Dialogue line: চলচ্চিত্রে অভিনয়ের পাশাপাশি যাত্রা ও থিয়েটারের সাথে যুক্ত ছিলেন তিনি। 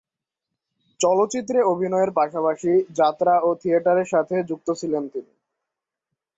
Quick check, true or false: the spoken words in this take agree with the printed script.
true